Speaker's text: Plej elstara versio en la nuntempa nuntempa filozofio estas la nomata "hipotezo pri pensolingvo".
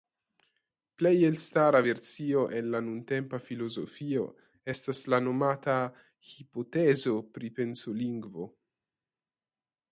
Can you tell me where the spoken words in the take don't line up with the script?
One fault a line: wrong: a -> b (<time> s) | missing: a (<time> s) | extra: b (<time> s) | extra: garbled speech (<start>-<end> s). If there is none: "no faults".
missing: nuntempa (3.4 s)